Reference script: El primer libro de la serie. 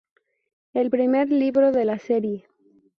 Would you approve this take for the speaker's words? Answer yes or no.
yes